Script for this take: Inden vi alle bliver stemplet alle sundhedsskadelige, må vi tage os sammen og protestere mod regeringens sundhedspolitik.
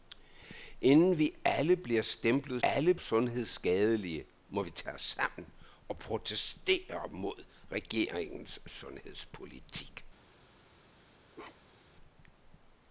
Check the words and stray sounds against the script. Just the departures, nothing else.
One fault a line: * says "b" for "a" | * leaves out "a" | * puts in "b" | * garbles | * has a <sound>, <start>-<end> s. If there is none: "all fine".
* has a bark, 11.3-11.9 s